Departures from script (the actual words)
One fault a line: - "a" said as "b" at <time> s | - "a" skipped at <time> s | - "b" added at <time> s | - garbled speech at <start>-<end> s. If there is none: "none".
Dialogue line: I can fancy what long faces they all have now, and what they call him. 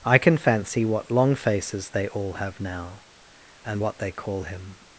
none